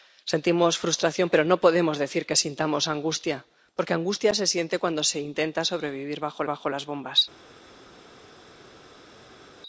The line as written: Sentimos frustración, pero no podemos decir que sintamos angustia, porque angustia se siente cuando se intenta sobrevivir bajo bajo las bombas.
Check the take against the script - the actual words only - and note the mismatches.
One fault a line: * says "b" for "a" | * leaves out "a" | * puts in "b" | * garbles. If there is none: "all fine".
all fine